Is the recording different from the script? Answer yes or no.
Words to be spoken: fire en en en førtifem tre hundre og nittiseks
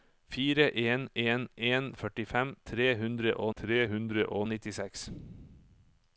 yes